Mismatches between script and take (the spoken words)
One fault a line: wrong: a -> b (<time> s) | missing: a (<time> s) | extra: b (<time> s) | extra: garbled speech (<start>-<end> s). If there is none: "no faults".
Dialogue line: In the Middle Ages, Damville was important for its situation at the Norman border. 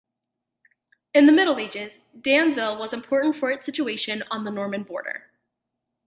wrong: at -> on (4.3 s)